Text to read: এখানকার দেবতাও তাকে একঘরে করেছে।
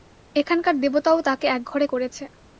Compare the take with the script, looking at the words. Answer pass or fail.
pass